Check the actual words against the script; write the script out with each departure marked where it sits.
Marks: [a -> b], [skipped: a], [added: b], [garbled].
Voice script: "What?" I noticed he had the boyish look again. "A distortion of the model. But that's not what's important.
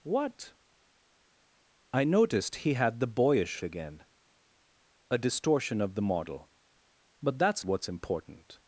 "What?" I noticed he had the boyish [skipped: look] again. "A distortion of the model. But that's [skipped: not] what's important.